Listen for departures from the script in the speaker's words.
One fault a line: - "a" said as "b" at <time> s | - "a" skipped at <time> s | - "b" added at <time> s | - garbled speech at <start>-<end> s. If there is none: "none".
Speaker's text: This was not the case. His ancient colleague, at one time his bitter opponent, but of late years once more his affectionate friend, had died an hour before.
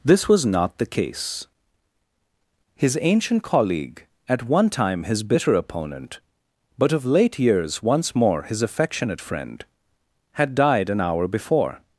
none